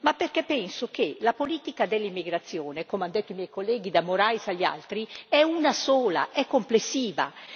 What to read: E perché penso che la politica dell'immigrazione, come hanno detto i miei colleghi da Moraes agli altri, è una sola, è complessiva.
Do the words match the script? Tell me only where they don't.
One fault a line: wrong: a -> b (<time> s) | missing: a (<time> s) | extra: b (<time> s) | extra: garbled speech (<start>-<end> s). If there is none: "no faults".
wrong: E -> Ma (0.0 s)